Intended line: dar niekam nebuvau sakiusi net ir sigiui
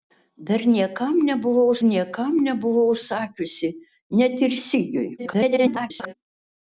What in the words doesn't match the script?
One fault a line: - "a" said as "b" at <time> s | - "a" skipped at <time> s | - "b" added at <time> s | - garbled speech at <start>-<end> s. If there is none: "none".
- "niekam nebuvau" added at 1.9 s
- garbled speech at 5.2-6.1 s